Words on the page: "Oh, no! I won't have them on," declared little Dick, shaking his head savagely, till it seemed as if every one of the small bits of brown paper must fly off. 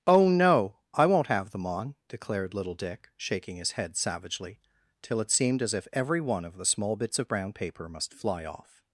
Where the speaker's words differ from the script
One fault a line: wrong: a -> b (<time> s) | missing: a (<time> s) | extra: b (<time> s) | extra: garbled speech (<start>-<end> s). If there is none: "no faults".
no faults